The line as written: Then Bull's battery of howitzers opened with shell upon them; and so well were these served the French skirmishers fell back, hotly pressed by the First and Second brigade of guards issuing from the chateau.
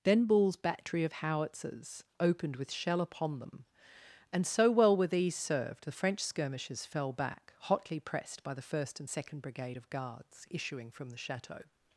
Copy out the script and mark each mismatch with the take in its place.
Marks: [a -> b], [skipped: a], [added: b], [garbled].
Then Bull's battery of howitzers opened with shell upon them; and so well were these served the French skirmishers fell back, hotly pressed by the First and Second brigade of guards issuing from the chateau.